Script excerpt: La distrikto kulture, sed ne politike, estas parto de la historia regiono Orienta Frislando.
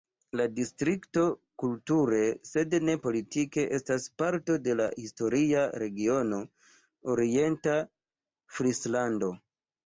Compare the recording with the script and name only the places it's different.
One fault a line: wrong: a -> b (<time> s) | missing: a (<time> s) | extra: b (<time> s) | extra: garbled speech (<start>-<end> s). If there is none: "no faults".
no faults